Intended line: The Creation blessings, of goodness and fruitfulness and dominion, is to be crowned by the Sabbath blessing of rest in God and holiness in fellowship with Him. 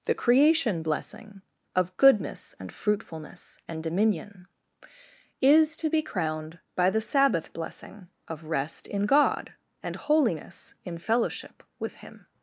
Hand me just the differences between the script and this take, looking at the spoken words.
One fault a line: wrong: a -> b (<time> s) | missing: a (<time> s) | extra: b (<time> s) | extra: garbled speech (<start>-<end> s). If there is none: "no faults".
wrong: blessings -> blessing (0.8 s)